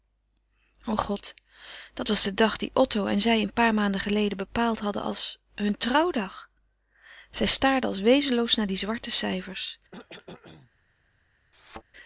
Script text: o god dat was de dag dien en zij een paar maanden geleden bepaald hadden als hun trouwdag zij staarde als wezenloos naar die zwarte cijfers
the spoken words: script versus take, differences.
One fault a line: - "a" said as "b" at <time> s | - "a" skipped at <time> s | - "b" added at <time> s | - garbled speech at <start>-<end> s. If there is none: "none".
- "otto" added at 2.7 s